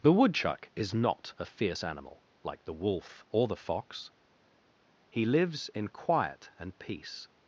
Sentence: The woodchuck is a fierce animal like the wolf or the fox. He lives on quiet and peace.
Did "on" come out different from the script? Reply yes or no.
yes